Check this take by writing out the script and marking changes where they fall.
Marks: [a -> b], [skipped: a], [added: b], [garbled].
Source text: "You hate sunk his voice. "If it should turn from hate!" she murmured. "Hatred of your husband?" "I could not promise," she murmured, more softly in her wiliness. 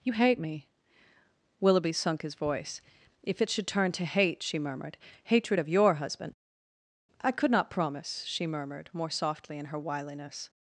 "You hate [added: me Willoughby] sunk his voice. "If it should turn [from -> to] hate!" she murmured. "Hatred of your husband?" "I could not promise," she murmured, more softly in her wiliness.